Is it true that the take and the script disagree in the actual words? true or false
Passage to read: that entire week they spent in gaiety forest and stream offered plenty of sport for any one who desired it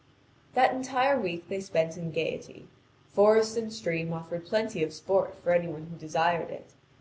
false